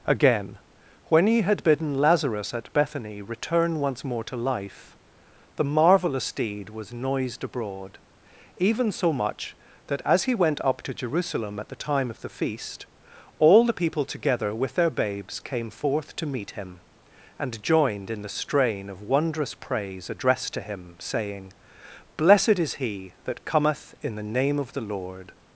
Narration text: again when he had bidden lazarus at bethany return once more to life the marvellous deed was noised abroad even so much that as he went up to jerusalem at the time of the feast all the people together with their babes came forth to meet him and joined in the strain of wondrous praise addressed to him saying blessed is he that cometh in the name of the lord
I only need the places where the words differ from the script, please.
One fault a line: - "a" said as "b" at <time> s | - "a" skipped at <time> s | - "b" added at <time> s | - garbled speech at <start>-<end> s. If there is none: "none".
none